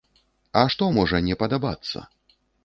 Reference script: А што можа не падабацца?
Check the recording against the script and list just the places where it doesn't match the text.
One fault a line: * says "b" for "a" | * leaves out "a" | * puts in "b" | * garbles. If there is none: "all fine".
all fine